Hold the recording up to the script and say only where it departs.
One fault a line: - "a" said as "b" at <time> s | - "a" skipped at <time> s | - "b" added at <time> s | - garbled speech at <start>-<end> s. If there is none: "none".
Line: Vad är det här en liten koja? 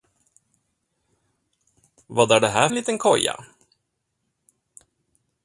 none